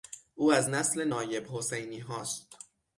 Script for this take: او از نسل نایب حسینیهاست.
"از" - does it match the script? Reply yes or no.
yes